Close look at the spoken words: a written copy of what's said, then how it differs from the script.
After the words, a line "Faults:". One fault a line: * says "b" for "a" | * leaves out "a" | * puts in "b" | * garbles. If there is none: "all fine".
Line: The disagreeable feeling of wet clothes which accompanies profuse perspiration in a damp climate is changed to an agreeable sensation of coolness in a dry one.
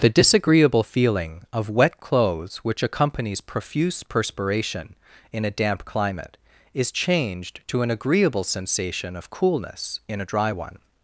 The disagreeable feeling of wet clothes which accompanies profuse perspiration in a damp climate is changed to an agreeable sensation of coolness in a dry one.
Faults:
all fine